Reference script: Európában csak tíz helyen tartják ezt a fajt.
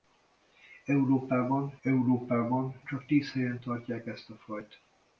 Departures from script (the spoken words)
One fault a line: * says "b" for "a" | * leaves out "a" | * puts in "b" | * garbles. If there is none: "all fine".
* puts in "európában"